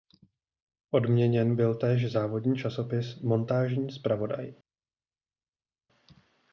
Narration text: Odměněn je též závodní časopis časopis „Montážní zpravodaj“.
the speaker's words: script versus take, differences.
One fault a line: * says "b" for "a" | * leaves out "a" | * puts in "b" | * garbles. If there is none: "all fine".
* says "byl" for "je"
* leaves out "časopis"